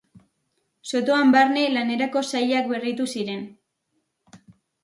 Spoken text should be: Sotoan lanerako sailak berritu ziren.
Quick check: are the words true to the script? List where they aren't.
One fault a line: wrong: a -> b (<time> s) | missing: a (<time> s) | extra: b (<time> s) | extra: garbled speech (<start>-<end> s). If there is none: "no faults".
extra: barne (1.3 s)